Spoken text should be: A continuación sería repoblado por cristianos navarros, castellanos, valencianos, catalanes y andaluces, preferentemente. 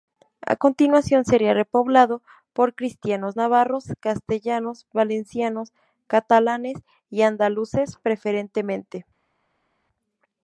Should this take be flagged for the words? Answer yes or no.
no